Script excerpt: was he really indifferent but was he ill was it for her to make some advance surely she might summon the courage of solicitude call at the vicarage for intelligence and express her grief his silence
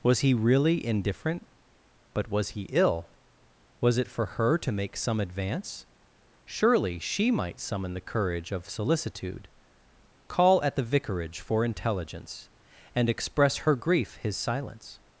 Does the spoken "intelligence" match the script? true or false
true